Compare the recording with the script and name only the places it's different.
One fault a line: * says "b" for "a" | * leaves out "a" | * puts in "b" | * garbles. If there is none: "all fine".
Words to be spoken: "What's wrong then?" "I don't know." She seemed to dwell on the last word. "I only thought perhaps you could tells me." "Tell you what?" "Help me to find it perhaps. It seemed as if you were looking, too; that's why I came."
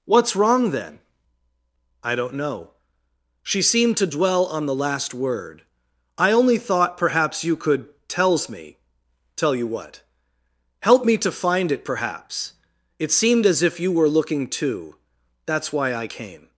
all fine